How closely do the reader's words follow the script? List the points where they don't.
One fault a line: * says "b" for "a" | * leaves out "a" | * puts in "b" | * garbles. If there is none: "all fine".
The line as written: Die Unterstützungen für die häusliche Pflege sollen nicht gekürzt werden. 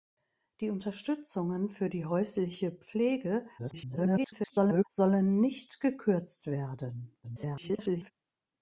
* garbles
* garbles